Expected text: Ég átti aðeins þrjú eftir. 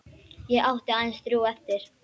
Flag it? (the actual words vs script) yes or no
no